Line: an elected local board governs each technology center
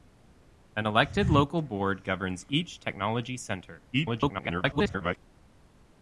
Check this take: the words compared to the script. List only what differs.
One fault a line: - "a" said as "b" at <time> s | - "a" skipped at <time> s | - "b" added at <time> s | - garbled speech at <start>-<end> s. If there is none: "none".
- garbled speech at 3.9-5.2 s